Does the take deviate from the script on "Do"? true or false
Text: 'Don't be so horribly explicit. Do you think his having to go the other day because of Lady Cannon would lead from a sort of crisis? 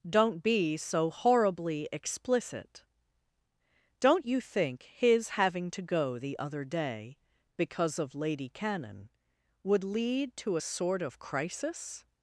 true